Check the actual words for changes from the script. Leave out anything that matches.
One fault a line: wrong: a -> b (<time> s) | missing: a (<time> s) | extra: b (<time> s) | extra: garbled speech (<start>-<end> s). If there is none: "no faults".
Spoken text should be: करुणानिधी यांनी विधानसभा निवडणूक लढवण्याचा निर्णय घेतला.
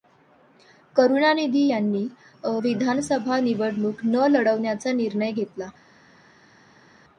extra: न (4.0 s)